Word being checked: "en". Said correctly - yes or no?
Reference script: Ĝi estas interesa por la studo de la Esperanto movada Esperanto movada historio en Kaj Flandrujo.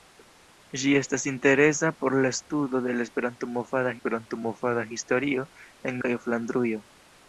yes